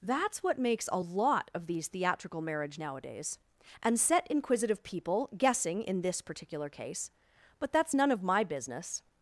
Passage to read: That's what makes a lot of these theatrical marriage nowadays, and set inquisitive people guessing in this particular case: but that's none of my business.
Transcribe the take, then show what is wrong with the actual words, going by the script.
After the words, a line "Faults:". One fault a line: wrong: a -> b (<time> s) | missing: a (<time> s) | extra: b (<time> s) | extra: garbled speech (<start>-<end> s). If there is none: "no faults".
That's what makes a lot of these theatrical marriage nowadays, and set inquisitive people guessing in this particular case: but that's none of my business.
Faults:
no faults